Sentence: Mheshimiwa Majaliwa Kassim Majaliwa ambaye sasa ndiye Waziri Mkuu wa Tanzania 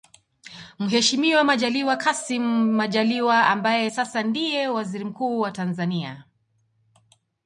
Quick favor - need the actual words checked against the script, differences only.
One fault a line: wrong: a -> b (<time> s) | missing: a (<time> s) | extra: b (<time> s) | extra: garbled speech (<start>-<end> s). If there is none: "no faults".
no faults